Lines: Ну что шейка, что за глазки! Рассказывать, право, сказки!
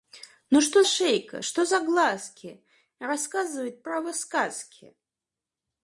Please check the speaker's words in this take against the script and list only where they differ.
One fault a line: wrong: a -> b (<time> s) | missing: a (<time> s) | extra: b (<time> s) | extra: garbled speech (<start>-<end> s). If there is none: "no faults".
no faults